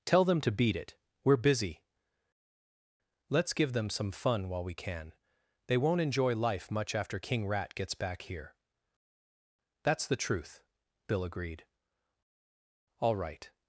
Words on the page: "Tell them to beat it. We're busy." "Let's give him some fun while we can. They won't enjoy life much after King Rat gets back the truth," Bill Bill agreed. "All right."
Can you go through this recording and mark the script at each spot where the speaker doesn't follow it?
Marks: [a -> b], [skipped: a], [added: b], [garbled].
"Tell them to beat it. We're busy." "Let's give [him -> them] some fun while we can. They won't enjoy life much after King Rat gets back [added: here That's] the truth," Bill [skipped: Bill] agreed. "All right."